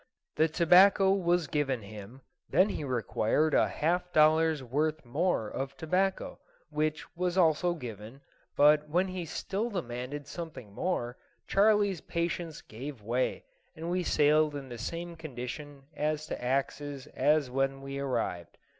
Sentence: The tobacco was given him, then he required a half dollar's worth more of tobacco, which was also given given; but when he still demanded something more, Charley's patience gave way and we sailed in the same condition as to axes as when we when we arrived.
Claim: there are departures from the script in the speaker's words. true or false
true